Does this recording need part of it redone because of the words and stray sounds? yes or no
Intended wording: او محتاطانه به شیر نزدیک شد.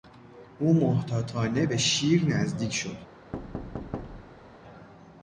yes